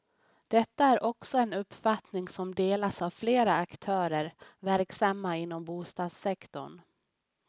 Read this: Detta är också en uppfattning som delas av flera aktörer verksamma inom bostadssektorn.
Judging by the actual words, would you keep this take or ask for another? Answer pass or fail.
pass